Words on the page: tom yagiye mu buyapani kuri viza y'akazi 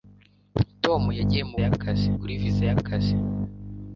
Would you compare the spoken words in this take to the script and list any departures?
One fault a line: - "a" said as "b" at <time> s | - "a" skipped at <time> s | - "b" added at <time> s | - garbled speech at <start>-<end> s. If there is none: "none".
- "buyapani" said as "y'akazi" at 1.6 s